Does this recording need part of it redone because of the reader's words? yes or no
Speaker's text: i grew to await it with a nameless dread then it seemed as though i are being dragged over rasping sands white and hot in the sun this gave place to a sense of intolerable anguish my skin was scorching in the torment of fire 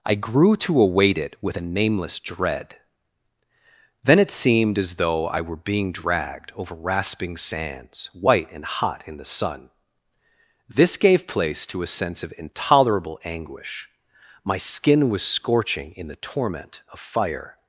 yes